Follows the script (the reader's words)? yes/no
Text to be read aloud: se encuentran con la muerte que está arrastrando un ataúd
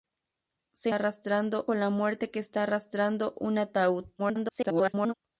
no